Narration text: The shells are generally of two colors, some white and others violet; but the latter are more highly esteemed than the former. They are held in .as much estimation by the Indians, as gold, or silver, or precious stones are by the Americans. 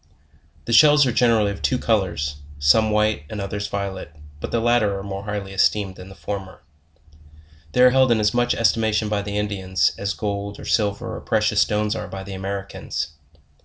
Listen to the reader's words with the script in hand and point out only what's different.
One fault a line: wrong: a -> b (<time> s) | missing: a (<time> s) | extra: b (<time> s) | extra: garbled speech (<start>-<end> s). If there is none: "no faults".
no faults